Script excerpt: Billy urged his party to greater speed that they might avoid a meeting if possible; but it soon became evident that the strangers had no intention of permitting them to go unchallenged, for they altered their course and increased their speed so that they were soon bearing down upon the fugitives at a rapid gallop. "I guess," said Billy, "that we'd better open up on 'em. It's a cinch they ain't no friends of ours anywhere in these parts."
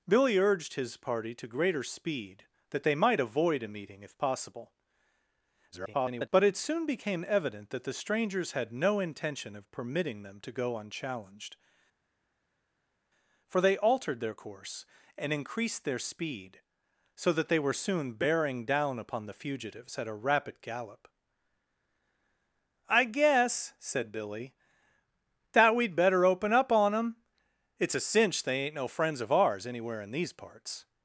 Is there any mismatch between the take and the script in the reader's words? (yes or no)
yes